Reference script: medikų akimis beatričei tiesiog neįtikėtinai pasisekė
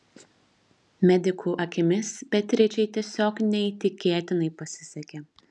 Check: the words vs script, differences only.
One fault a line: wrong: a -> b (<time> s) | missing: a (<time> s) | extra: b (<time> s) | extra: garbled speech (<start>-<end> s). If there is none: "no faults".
no faults